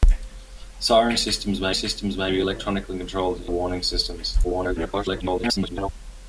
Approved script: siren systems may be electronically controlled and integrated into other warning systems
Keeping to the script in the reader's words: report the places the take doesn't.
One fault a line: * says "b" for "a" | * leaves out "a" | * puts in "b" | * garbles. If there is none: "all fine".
* puts in "systems may"
* leaves out "integrated into other"
* garbles